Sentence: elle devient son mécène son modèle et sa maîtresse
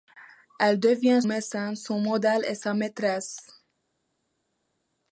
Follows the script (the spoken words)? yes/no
no